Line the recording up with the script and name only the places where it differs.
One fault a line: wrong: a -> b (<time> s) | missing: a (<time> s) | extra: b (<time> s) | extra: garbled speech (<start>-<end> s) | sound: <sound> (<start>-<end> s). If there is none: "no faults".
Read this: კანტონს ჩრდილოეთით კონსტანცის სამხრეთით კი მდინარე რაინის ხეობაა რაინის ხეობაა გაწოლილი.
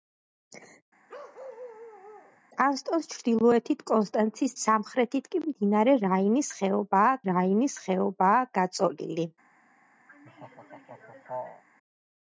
sound: bark (1.1-2.4 s)
sound: laugh (10.1-11.6 s)